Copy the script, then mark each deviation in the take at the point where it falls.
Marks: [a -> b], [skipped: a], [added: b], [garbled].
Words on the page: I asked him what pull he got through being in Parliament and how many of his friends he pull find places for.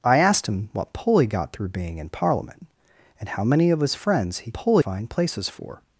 I asked him what pull he got through being in Parliament and how many of his friends he pull find places for.